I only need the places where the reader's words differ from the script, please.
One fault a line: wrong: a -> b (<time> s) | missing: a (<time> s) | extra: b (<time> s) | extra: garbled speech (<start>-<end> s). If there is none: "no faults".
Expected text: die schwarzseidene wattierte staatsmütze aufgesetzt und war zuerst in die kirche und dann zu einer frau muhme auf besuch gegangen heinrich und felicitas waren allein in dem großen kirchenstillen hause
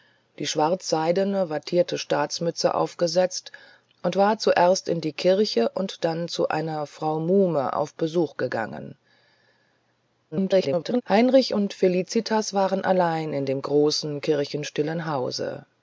extra: garbled speech (10.3-11.0 s)